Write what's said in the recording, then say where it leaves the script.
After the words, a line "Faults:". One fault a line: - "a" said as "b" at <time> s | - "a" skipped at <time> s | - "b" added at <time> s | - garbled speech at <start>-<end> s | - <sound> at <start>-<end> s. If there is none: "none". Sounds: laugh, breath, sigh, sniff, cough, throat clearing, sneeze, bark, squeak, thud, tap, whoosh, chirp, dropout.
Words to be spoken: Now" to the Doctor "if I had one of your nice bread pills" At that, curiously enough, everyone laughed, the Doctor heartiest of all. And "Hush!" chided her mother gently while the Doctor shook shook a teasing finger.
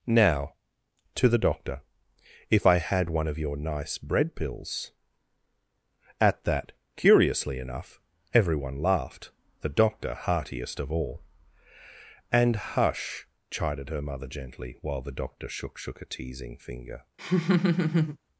Now" to the Doctor "if I had one of your nice bread pills" At that, curiously enough, everyone laughed, the Doctor heartiest of all. And "Hush!" chided her mother gently while the Doctor shook shook a teasing finger.
Faults:
- laugh at 17.2-18.2 s